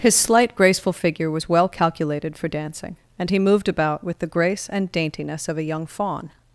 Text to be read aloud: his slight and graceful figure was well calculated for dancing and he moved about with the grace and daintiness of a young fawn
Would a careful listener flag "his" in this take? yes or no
no